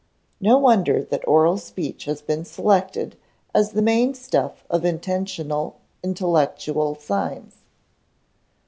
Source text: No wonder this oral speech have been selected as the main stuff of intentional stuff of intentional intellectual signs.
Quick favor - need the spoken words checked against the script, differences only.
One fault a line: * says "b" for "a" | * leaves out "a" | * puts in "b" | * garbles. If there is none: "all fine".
* says "that" for "this"
* says "has" for "have"
* leaves out "stuff of intentional"